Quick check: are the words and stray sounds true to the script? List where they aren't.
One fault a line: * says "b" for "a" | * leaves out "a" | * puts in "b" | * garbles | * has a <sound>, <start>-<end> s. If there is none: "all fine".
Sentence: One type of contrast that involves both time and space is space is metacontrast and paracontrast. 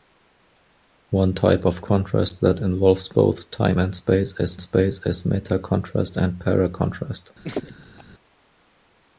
* has a laugh, 7.4-8.0 s